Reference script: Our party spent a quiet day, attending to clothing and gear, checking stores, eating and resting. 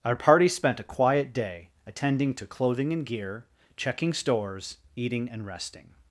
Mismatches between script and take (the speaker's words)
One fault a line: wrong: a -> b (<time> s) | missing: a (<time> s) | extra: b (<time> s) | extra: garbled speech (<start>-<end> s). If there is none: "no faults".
no faults